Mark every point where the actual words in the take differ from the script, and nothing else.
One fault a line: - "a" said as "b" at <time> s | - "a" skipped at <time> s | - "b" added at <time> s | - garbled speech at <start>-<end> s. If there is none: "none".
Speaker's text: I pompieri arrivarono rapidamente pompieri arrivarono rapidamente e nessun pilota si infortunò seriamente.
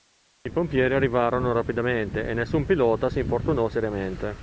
- "pompieri arrivarono rapidamente" skipped at 2.2 s